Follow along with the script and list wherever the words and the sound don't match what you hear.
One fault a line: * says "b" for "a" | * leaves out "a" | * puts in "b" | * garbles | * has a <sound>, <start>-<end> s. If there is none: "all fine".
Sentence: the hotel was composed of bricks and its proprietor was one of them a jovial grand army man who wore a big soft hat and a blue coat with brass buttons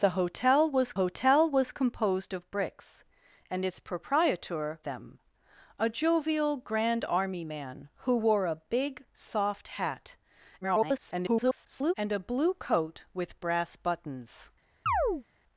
* puts in "hotel was"
* leaves out "was one of"
* garbles
* has a chirp, 14.9-15.2 s